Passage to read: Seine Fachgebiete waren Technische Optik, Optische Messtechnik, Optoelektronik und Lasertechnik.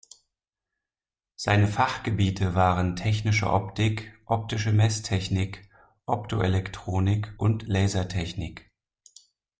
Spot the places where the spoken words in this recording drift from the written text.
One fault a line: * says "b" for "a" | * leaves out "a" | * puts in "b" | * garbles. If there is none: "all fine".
all fine